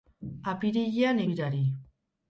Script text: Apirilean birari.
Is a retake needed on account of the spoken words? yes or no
no